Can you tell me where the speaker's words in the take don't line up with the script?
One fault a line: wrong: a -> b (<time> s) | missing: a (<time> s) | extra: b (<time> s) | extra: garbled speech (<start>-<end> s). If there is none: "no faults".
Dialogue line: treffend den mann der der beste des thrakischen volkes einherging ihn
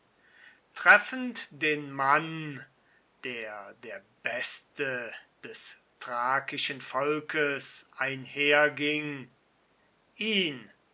no faults